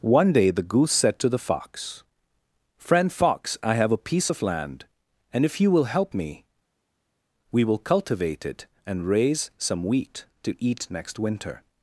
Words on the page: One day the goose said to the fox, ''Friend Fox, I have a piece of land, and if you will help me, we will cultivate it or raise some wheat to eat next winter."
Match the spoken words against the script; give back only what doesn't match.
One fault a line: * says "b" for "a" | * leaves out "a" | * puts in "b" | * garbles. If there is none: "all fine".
* says "and" for "or"